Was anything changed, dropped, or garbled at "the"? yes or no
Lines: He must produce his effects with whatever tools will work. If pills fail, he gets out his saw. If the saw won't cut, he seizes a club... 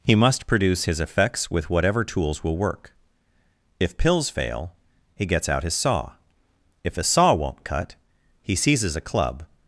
yes